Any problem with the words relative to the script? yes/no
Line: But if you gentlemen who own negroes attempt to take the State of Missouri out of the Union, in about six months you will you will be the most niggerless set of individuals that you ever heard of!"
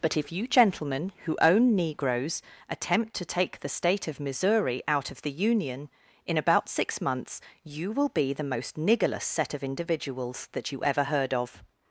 yes